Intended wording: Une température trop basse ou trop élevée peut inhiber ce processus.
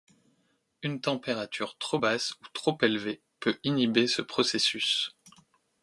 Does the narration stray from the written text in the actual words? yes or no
no